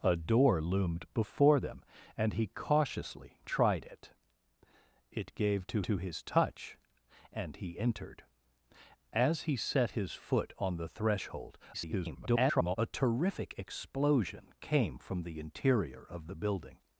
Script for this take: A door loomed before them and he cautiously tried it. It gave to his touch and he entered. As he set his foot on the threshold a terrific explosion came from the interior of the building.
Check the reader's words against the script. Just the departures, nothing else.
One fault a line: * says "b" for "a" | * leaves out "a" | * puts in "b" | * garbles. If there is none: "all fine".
* puts in "to"
* garbles